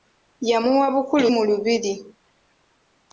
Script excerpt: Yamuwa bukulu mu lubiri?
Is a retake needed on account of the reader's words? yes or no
no